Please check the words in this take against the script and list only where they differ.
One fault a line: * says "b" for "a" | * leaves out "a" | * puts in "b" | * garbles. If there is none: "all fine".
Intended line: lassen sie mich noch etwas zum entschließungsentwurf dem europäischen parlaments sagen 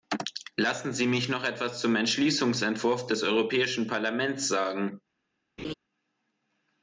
* says "des" for "dem"